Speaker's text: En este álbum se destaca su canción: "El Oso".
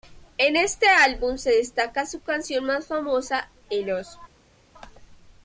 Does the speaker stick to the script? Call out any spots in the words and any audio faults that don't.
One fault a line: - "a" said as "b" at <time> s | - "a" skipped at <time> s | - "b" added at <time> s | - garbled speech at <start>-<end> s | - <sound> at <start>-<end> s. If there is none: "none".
- "más famosa" added at 2.6 s